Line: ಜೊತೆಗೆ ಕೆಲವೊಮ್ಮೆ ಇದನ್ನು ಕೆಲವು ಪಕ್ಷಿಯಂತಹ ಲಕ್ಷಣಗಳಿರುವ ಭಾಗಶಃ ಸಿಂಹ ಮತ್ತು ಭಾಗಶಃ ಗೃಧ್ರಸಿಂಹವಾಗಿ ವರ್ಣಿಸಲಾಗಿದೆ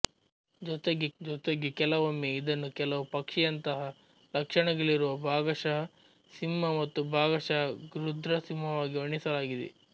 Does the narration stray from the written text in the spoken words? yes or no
yes